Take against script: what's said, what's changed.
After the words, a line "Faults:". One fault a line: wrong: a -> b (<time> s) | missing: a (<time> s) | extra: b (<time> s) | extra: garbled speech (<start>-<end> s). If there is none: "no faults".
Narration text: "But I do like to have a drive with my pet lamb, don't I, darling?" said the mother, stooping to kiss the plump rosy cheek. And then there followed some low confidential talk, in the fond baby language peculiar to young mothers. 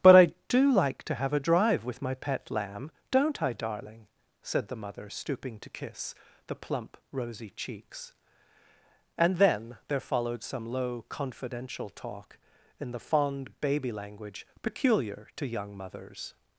"But I do like to have a drive with my pet lamb, don't I, darling?" said the mother, stooping to kiss the plump rosy cheeks. And then there followed some low confidential talk, in the fond baby language peculiar to young mothers.
Faults:
wrong: cheek -> cheeks (7.5 s)